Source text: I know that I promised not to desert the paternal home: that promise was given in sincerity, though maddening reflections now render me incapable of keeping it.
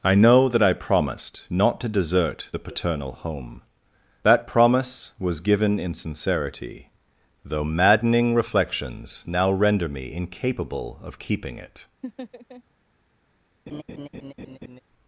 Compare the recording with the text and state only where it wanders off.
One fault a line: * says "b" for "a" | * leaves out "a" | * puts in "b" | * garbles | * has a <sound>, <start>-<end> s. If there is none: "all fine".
* has a laugh, 12.0-12.6 s
* has a laugh, 13.7-14.8 s